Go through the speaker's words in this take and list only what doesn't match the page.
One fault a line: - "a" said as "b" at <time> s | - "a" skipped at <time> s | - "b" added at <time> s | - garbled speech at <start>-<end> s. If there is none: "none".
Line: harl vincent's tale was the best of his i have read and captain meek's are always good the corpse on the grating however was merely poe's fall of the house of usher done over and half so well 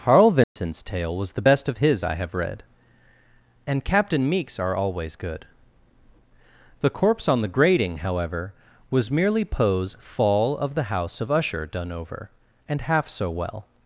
none